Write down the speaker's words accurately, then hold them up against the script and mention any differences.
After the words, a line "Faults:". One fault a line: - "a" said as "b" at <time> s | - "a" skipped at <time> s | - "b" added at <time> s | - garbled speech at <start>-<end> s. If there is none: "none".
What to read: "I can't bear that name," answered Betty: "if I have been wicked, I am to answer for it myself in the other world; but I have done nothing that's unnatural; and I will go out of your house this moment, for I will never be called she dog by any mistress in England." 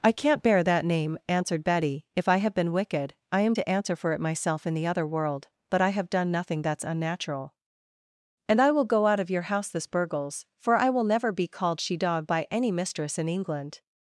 "I can't bear that name," answered Betty: "if I have been wicked, I am to answer for it myself in the other world; but I have done nothing that's unnatural; and I will go out of your house this burgles, for I will never be called she dog by any mistress in England."
Faults:
- "moment" said as "burgles" at 9.9 s